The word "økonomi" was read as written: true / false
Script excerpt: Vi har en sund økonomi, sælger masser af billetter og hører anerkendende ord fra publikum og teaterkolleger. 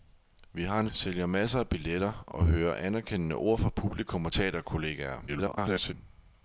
false